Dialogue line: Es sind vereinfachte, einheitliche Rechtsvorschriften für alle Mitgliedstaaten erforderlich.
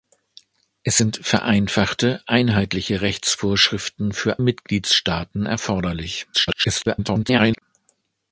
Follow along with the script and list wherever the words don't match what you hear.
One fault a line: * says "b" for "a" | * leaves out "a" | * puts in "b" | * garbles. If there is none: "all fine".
* leaves out "alle"
* garbles